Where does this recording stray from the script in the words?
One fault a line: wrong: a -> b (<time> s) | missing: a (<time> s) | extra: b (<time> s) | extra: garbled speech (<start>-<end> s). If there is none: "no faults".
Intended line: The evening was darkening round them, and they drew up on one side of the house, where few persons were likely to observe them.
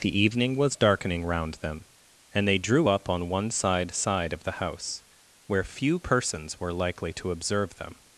extra: side (3.9 s)